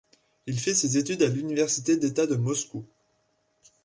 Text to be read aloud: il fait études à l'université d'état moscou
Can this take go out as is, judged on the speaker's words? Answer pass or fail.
fail